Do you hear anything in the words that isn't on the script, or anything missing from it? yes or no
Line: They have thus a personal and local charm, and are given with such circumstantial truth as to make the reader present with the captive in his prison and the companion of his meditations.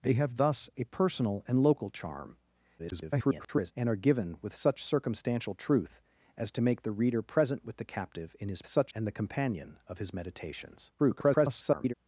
yes